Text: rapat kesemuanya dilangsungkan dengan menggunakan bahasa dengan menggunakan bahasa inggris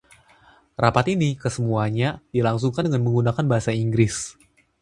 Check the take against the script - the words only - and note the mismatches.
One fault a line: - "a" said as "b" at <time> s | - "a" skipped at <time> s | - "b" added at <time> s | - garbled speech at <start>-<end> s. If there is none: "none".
- "ini" added at 1.1 s
- "dengan menggunakan bahasa" skipped at 3.7 s